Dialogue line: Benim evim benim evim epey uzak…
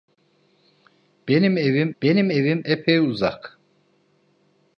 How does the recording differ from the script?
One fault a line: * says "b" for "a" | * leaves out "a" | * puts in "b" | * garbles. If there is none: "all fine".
all fine